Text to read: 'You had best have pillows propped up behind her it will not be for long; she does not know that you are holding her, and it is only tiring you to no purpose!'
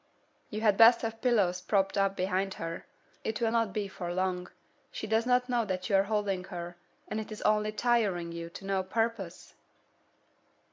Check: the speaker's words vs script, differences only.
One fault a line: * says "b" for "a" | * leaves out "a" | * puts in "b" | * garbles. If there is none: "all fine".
all fine